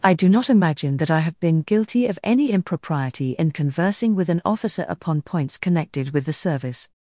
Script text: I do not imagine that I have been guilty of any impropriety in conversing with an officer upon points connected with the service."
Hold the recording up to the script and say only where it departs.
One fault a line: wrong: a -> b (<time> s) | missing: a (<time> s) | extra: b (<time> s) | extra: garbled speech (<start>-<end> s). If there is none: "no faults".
no faults